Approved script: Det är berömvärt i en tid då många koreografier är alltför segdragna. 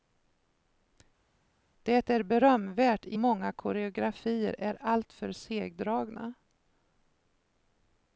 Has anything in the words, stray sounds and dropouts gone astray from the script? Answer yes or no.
yes